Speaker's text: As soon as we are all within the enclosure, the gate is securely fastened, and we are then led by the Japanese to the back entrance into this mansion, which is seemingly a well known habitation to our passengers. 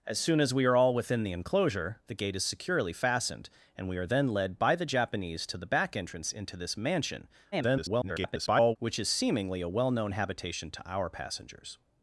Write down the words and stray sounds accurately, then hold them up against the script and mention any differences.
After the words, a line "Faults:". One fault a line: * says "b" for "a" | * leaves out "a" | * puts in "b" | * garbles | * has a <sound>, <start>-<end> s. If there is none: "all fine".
As soon as we are all within the enclosure, the gate is securely fastened, and we are then led by the Japanese to the back entrance into this mansion, [garbled] which is seemingly a well known habitation to our passengers.
Faults:
* garbles